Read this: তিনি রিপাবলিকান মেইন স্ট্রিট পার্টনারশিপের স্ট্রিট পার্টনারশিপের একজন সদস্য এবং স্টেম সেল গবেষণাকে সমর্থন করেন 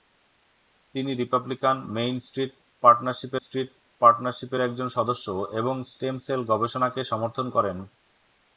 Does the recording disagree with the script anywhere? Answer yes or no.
no